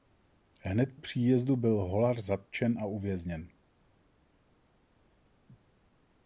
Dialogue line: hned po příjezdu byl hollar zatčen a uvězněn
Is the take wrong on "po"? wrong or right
wrong